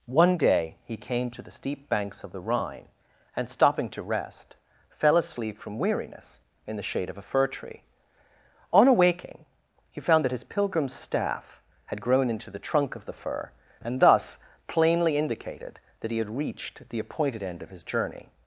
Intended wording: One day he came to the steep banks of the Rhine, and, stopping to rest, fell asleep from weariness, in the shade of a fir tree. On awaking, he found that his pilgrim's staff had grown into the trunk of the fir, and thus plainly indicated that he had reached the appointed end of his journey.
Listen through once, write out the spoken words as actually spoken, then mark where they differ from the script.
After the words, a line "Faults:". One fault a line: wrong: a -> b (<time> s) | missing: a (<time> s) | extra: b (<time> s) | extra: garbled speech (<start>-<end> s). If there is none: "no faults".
One day he came to the steep banks of the Rhine, and, stopping to rest, fell asleep from weariness, in the shade of a fir tree. On awaking, he found that his pilgrim's staff had grown into the trunk of the fir, and thus plainly indicated that he had reached the appointed end of his journey.
Faults:
no faults